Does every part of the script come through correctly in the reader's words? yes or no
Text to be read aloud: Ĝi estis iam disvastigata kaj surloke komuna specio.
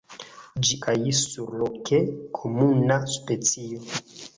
no